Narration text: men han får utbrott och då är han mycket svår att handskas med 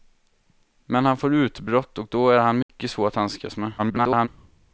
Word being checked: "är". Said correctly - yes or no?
yes